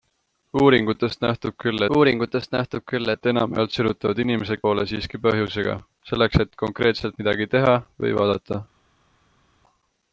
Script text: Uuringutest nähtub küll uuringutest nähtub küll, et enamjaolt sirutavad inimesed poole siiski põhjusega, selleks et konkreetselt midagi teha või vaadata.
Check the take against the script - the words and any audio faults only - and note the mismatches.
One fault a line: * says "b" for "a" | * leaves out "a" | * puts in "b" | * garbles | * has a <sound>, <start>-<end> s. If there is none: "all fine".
all fine